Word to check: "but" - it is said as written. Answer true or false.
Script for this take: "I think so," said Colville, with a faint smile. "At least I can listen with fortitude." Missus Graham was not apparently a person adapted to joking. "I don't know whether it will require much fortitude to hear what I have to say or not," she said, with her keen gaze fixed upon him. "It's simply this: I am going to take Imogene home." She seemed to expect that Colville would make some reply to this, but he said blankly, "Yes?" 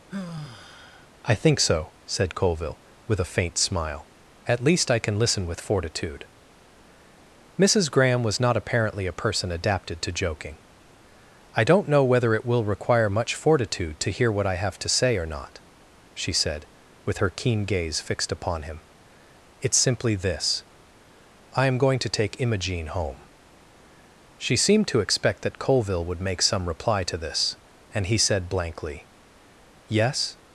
false